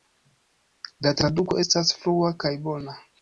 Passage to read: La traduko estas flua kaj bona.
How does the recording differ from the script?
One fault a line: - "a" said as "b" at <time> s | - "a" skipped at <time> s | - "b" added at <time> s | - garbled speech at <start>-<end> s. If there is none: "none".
none